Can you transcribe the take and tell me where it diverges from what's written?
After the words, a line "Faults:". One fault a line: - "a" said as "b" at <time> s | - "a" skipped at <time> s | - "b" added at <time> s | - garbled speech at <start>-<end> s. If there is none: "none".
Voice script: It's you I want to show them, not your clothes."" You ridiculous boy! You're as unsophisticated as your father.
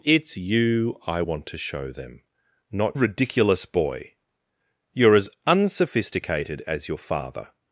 It's you I want to show them, not ridiculous boy! You're as unsophisticated as your father.
Faults:
- "your clothes You" skipped at 3.0 s